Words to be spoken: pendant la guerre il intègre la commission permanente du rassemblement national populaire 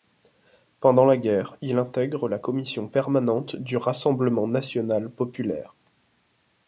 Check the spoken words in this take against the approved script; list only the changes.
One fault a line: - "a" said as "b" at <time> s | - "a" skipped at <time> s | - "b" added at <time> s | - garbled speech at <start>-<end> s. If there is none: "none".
none